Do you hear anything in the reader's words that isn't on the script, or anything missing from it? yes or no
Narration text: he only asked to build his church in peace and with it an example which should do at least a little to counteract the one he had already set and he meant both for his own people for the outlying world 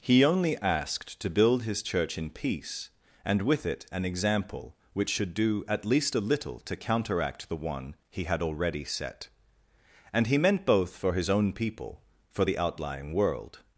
no